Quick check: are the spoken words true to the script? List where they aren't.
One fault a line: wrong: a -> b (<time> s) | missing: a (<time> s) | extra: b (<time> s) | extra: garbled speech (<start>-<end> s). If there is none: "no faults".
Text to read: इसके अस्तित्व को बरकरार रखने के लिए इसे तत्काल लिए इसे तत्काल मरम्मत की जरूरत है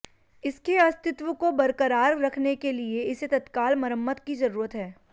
missing: लिए इसे तत्काल (3.8 s)